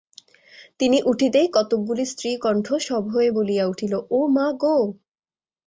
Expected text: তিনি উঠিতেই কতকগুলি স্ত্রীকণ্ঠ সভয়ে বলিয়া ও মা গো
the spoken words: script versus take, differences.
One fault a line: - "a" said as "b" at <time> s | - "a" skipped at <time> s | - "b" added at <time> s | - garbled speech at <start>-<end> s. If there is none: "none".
- "উঠিল" added at 3.7 s